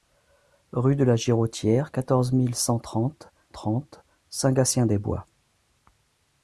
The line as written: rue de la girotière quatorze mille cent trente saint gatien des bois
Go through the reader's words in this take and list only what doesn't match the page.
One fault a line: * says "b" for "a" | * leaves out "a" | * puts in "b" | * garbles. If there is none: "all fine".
* puts in "trente"